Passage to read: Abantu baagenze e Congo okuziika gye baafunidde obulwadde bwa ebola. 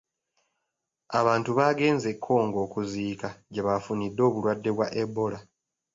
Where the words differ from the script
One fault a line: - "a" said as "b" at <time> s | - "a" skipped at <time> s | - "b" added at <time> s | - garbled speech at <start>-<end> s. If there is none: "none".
none